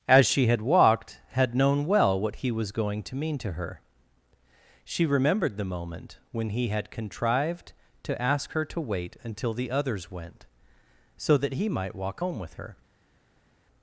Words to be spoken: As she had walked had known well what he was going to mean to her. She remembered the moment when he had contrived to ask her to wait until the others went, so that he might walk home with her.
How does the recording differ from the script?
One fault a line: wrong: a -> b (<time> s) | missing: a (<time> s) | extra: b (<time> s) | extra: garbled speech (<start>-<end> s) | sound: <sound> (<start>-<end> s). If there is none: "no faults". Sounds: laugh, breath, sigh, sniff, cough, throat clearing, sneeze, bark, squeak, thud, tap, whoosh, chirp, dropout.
no faults